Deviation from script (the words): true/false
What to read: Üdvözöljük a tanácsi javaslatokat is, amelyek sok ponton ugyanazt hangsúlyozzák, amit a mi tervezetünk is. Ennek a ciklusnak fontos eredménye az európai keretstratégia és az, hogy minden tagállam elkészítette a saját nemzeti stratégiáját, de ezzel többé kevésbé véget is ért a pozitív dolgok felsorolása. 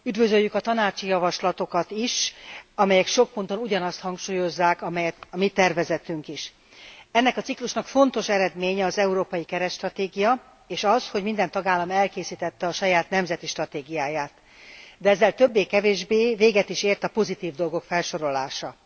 false